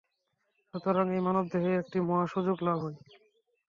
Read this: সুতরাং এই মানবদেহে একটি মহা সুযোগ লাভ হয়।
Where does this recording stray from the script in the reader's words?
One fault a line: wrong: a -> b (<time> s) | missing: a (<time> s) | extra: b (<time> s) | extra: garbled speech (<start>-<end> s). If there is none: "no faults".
no faults